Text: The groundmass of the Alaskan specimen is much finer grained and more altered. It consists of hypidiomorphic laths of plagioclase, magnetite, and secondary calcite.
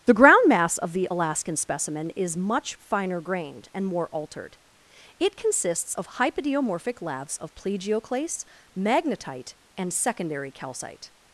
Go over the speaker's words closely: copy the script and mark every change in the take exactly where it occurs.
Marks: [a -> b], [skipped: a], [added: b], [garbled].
The groundmass of the Alaskan specimen is much finer grained and more altered. It consists of hypidiomorphic laths of plagioclase, magnetite, and secondary calcite.